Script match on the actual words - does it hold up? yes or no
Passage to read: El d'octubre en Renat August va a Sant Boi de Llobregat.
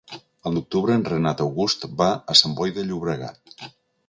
yes